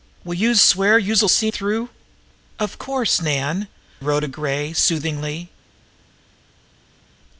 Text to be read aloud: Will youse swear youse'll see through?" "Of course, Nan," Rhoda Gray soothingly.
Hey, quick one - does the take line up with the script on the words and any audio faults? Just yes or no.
yes